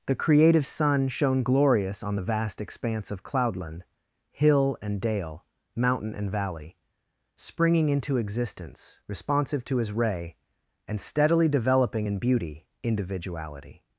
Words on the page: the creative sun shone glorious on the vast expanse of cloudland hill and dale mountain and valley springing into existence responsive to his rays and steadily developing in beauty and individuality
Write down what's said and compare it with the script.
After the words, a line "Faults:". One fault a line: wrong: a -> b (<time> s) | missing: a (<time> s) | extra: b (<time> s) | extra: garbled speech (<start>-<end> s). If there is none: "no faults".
the creative sun shone glorious on the vast expanse of cloudland hill and dale mountain and valley springing into existence responsive to his ray and steadily developing in beauty individuality
Faults:
wrong: rays -> ray (9.9 s)
missing: and (12.7 s)